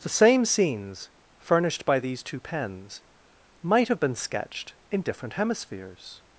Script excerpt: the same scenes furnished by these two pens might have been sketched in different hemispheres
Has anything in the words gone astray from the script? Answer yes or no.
no